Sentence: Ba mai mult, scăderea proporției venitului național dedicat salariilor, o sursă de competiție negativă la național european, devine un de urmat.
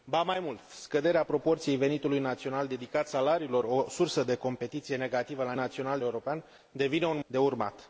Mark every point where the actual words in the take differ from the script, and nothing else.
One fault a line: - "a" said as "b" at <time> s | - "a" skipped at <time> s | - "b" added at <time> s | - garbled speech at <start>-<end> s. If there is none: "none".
none